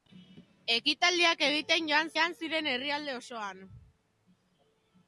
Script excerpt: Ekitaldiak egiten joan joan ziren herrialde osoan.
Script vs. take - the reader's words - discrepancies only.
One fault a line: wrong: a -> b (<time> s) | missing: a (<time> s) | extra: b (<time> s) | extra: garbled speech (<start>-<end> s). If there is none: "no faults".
no faults